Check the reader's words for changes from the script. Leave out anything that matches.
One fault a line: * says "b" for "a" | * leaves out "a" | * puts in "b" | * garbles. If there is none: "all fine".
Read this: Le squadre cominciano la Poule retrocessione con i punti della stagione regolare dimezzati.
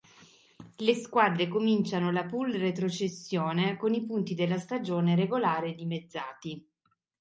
all fine